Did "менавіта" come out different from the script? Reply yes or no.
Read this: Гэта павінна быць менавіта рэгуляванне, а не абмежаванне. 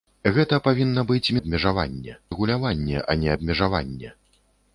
yes